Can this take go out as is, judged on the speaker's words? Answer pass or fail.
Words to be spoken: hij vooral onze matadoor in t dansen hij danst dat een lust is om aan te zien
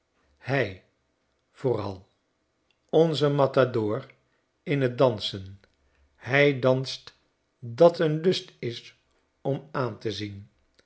pass